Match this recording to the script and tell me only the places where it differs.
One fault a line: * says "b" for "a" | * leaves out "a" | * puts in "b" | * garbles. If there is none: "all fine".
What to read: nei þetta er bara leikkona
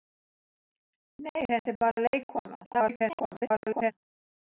* garbles